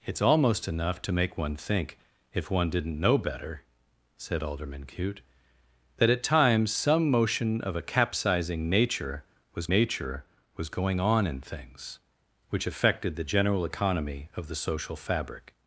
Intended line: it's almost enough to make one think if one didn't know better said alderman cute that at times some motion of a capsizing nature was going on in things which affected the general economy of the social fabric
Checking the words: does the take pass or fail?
fail